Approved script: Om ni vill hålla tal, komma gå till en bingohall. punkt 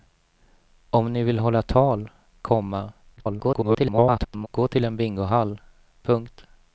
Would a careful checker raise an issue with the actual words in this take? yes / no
yes